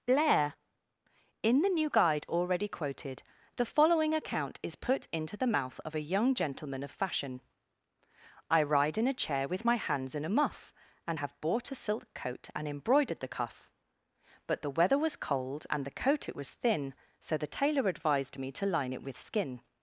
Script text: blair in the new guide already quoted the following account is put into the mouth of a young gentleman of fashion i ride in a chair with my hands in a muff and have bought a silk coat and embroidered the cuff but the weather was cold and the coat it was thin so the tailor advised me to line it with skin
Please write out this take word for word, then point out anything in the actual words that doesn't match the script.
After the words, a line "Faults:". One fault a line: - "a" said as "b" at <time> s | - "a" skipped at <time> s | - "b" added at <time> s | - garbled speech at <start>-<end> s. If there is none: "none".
blair in the new guide already quoted the following account is put into the mouth of a young gentleman of fashion i ride in a chair with my hands in a muff and have bought a silk coat and embroidered the cuff but the weather was cold and the coat it was thin so the tailor advised me to line it with skin
Faults:
none